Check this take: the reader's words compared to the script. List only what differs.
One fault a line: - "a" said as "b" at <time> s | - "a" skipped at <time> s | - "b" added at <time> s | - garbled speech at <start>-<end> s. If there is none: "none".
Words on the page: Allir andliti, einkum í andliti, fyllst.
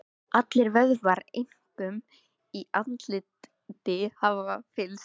- "andliti" said as "vöðvar" at 0.8 s
- "hafa" added at 4.2 s